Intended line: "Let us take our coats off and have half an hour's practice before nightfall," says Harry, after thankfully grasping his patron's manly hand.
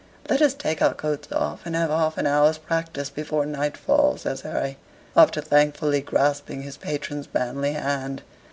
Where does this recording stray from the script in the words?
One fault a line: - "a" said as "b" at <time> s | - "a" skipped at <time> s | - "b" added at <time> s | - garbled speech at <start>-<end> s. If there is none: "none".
none